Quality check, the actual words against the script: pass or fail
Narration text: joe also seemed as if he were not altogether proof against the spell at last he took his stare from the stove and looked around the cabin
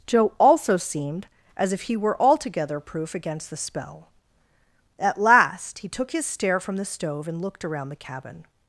fail